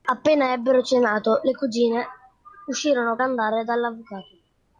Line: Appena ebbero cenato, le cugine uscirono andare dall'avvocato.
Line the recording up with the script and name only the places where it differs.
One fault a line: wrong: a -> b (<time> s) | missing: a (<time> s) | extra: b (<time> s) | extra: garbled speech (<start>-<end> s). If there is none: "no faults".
no faults